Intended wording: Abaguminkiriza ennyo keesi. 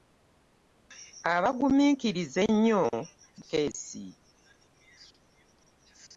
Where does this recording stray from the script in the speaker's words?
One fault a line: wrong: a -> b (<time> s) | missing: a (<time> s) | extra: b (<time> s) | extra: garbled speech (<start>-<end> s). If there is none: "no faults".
no faults